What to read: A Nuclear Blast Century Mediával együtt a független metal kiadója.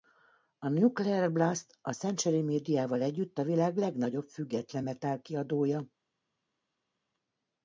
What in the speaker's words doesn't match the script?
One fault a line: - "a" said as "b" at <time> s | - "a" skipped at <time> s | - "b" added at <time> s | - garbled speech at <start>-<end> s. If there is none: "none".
- "a" added at 1.8 s
- "világ legnagyobb" added at 3.4 s